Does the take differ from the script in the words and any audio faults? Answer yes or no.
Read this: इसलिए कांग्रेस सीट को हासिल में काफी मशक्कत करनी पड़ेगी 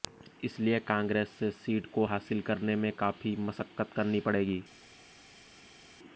yes